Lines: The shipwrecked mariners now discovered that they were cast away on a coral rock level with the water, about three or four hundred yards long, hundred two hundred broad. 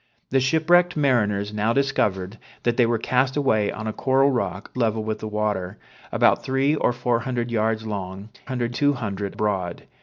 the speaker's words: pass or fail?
pass